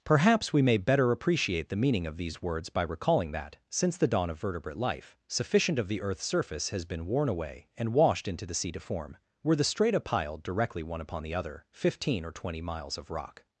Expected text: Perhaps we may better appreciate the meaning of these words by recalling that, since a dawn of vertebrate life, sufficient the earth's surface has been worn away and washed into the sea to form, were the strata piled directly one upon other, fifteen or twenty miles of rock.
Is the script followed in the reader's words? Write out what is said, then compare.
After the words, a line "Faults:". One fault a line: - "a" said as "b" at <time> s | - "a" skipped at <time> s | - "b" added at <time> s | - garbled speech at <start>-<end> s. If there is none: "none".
Perhaps we may better appreciate the meaning of these words by recalling that, since the dawn of vertebrate life, sufficient of the earth's surface has been worn away and washed into the sea to form, were the strata piled directly one upon the other, fifteen or twenty miles of rock.
Faults:
- "a" said as "the" at 4.0 s
- "of" added at 5.8 s
- "the" added at 11.2 s